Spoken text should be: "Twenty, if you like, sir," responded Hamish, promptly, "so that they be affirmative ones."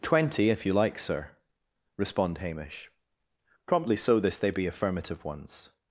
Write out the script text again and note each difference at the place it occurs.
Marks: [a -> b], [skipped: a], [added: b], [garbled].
"Twenty, if you like, sir," [responded -> respond] Hamish, promptly, "so [that -> this] they be affirmative ones."